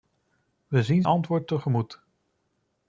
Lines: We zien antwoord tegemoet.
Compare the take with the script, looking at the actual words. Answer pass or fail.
pass